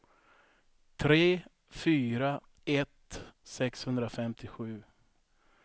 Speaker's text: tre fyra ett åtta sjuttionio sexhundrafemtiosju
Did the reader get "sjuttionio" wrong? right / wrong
wrong